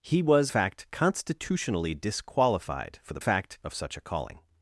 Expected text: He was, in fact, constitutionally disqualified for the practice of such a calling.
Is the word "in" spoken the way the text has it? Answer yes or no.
no